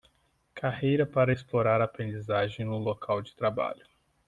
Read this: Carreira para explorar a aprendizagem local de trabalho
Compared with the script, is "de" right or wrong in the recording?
right